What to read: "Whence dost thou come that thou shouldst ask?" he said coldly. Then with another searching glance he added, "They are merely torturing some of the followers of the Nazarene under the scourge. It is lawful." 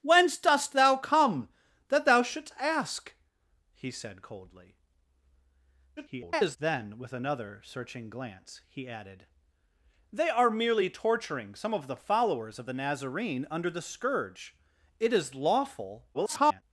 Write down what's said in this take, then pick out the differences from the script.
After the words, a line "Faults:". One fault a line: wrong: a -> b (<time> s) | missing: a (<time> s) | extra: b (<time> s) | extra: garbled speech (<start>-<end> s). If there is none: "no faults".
"Whence dost thou come that thou shouldst ask?" he said coldly. [garbled] Then with another searching glance he added, "They are merely torturing some of the followers of the Nazarene under the scourge. It is lawful." [garbled]
Faults:
extra: garbled speech (6.0-6.6 s)
extra: garbled speech (16.1-16.6 s)